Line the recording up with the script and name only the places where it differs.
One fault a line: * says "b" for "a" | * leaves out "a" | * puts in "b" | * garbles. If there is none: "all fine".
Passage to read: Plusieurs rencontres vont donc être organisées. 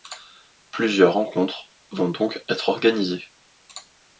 all fine